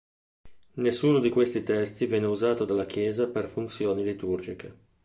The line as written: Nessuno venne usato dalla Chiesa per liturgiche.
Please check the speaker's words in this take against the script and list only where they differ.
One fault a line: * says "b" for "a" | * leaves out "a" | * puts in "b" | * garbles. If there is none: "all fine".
* puts in "di questi testi"
* puts in "funzioni"